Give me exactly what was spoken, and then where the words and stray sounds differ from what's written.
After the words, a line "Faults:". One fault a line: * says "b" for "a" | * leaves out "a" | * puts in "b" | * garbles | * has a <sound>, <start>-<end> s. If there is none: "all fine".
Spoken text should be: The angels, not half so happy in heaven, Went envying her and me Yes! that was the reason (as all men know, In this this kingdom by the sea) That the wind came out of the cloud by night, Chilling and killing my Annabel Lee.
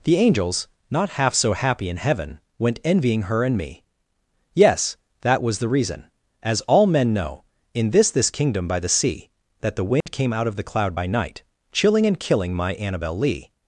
The angels, not half so happy in heaven, Went envying her and me Yes! that was the reason (as all men know, In this this kingdom by the sea) That the wind came out of the cloud by night, Chilling and killing my Annabel Lee.
Faults:
* has a dropout, 10.0-10.1 s